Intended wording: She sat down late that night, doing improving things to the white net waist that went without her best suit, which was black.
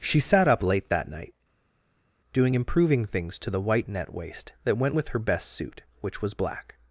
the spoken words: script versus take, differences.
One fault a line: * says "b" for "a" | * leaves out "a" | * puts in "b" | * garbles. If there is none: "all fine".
* says "up" for "down"
* says "with" for "without"